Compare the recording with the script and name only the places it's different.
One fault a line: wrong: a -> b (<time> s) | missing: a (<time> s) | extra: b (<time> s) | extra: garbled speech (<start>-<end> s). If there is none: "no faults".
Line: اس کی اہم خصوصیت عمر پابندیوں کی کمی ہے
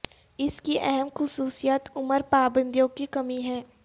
no faults